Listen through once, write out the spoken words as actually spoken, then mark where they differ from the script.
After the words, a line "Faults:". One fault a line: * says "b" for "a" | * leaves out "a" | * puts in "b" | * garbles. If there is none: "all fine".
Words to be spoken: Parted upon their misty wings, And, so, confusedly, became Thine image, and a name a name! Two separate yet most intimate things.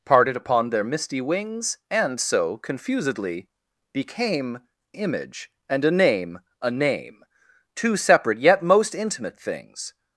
Parted upon their misty wings, And, so, confusedly, became Image, and a name a name! Two separate yet most intimate things.
Faults:
* leaves out "Thine"